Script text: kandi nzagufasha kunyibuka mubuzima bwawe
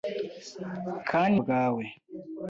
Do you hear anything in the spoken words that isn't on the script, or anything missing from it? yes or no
yes